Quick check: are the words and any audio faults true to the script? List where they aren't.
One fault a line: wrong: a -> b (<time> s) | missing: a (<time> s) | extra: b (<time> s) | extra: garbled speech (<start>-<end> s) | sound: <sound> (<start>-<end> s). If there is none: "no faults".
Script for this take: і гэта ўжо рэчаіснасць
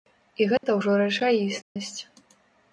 sound: dropout (0.6-0.6 s)
sound: dropout (1.6-1.8 s)